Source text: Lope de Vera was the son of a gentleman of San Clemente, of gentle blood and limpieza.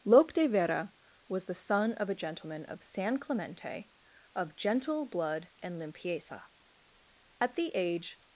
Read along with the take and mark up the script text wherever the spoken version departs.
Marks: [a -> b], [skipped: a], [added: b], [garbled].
Lope de Vera was the son of a gentleman of San Clemente, of gentle blood and limpieza. [added: At the age]